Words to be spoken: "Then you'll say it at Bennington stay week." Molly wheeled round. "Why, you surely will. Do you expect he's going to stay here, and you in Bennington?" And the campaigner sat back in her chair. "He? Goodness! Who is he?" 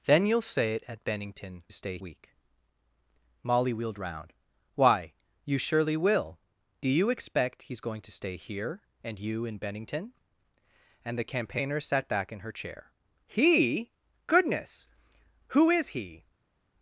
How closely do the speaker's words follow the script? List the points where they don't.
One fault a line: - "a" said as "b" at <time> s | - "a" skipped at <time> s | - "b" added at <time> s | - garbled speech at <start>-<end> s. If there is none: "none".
none